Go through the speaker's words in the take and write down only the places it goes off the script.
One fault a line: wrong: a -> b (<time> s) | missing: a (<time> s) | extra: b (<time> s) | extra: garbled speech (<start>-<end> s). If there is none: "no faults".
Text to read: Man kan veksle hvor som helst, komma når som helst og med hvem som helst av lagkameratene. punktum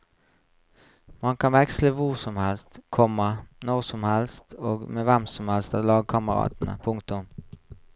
no faults